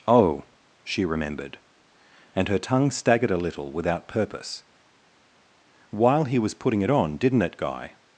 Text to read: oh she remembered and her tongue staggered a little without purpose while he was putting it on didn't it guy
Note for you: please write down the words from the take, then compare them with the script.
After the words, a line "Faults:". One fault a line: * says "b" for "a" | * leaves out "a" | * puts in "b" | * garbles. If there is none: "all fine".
oh she remembered and her tongue staggered a little without purpose while he was putting it on didn't it guy
Faults:
all fine